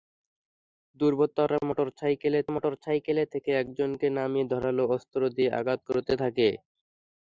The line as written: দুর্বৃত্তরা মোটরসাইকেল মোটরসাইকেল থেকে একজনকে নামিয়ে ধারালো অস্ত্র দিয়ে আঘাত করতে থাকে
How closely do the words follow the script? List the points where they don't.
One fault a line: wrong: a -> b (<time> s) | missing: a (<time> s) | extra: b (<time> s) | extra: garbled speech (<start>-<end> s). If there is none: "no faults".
no faults